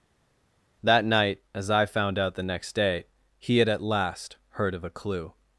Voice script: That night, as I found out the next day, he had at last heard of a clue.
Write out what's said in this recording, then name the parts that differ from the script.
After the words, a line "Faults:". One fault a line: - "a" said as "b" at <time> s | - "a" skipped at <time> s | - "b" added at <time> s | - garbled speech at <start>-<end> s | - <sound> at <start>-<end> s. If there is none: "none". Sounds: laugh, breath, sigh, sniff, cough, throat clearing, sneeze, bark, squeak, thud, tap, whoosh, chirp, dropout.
That night, as I found out the next day, he had at last heard of a clue.
Faults:
none